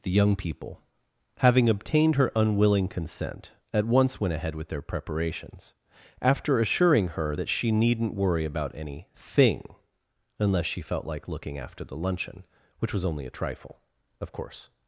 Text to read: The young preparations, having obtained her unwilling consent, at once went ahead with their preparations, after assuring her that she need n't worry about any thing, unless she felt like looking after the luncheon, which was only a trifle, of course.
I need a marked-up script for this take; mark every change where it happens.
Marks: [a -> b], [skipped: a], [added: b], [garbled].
The young [preparations, -> people] having obtained her unwilling consent, at once went ahead with their preparations, after assuring her that she need n't worry about any thing, unless she felt like looking after the luncheon, which was only a trifle, of course.